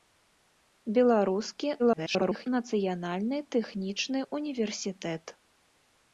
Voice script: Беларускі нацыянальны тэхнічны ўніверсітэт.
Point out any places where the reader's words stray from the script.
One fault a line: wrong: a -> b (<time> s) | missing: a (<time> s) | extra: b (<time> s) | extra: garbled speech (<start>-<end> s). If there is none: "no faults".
extra: garbled speech (1.8-2.5 s)